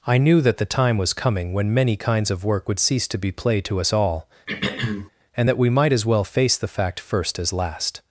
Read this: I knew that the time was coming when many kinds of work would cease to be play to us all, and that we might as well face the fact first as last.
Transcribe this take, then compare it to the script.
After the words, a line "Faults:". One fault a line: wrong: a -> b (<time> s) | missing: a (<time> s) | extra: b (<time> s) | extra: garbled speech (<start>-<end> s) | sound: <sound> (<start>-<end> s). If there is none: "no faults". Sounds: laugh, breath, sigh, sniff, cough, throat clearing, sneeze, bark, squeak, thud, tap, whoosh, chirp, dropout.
I knew that the time was coming when many kinds of work would cease to be play to us all, and that we might as well face the fact first as last.
Faults:
sound: throat clearing (4.5-5.1 s)